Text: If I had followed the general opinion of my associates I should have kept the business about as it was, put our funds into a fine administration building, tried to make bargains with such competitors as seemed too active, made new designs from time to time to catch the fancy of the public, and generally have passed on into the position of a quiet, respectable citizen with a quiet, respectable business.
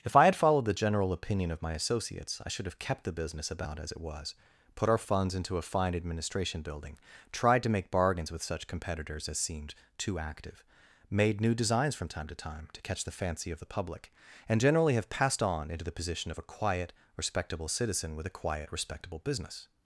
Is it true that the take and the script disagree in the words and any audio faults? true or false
false